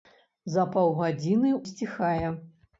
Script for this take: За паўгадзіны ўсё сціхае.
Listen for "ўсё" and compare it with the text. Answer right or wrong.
wrong